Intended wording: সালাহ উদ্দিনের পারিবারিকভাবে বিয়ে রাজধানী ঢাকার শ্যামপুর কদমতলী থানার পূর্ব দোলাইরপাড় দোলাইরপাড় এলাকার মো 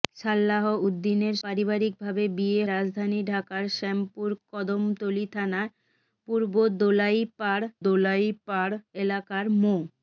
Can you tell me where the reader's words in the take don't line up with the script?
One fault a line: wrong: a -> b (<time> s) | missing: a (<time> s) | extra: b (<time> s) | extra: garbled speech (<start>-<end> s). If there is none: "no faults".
no faults